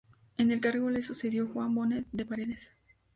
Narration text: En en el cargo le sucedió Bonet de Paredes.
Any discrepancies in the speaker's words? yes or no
yes